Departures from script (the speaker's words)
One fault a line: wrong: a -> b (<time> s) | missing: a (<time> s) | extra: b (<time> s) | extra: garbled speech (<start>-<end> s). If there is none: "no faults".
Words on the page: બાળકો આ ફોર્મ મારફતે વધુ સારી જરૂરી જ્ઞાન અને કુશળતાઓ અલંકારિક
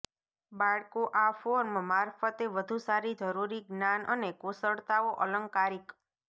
no faults